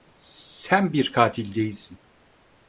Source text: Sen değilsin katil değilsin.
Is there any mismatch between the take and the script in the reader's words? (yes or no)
yes